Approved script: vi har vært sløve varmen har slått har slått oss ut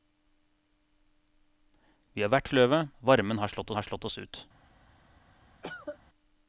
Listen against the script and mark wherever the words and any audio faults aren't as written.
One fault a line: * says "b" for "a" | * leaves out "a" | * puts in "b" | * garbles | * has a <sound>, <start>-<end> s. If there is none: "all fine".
* has a cough, 5.6-6.0 s